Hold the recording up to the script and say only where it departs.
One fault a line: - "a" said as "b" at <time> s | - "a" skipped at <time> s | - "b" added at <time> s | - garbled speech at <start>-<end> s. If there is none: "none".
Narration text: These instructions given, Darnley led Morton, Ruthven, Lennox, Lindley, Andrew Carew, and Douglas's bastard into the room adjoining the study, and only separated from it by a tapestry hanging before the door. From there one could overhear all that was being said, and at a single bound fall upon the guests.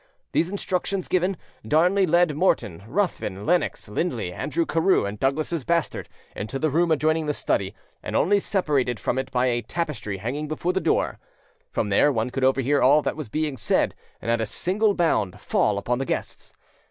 none